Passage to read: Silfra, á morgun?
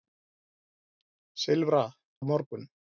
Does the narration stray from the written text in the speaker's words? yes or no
no